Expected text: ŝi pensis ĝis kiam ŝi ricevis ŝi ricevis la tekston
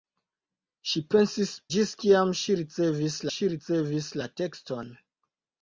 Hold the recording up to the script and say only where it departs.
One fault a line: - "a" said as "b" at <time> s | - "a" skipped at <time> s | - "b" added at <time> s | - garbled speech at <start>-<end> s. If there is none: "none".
none